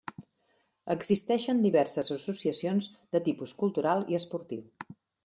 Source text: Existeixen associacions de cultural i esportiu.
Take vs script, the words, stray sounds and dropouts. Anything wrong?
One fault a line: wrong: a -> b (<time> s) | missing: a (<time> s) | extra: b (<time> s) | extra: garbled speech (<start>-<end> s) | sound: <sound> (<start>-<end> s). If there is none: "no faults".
extra: diverses (1.6 s)
extra: tipus (3.3 s)